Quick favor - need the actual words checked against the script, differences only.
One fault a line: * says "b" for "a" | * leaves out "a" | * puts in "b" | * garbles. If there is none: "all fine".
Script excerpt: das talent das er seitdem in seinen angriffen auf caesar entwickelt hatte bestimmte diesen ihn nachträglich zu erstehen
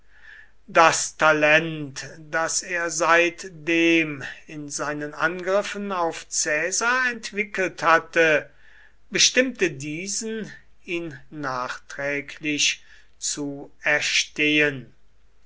all fine